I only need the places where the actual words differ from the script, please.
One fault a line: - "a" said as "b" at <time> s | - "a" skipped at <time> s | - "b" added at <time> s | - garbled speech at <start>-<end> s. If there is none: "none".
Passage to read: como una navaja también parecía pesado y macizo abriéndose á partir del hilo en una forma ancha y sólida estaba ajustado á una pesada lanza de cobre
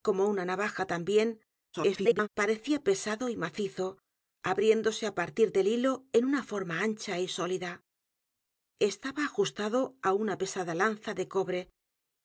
- garbled speech at 1.7-2.3 s